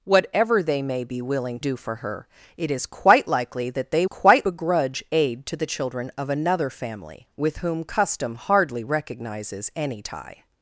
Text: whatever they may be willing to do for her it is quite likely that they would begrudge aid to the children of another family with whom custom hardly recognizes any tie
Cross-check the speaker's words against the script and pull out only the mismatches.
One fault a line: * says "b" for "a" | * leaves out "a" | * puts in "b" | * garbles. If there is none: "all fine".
* leaves out "to"
* says "quite" for "would"